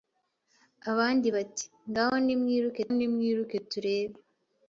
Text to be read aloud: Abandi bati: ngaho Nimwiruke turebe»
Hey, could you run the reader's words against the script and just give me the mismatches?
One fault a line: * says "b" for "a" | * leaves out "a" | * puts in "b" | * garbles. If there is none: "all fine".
* puts in "Nimwiruke"